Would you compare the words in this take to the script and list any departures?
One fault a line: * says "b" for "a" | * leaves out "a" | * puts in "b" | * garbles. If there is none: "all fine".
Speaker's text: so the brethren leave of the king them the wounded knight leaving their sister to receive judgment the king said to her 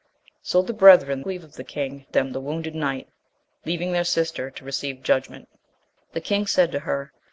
all fine